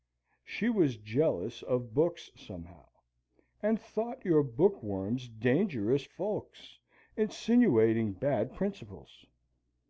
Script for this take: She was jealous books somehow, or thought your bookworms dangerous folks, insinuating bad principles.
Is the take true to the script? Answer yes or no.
no